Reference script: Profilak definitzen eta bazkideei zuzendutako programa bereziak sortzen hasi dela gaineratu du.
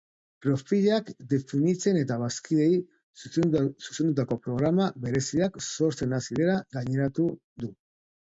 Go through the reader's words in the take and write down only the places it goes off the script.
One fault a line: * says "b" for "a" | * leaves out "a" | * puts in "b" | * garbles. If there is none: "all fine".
all fine